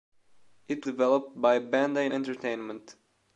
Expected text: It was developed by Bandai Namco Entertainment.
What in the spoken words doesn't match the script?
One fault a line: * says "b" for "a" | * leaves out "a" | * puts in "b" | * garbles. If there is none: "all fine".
* leaves out "was"
* leaves out "Namco"